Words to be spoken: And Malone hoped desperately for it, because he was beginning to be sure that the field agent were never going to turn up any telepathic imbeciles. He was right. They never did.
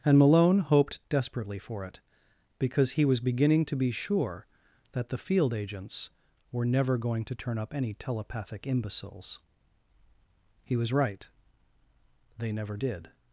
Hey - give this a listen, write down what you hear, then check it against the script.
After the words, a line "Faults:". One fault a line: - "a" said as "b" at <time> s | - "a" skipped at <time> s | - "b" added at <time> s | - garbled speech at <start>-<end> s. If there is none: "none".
And Malone hoped desperately for it, because he was beginning to be sure that the field agents were never going to turn up any telepathic imbeciles. He was right. They never did.
Faults:
- "agent" said as "agents" at 5.5 s